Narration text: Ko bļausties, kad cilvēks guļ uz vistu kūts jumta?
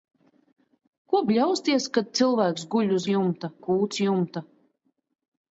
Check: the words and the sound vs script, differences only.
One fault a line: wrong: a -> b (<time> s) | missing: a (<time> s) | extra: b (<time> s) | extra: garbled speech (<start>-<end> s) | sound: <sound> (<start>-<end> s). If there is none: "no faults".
wrong: vistu -> jumta (3.1 s)